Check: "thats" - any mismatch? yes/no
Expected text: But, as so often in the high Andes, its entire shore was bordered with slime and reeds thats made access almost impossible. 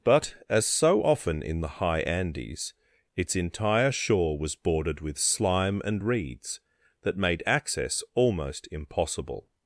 yes